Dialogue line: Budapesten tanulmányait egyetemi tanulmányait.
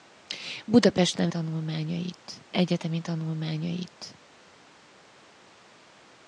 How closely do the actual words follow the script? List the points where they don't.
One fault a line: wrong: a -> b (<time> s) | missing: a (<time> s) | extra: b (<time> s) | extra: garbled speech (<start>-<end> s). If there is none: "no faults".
no faults